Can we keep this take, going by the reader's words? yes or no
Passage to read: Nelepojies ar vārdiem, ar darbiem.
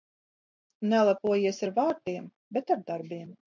no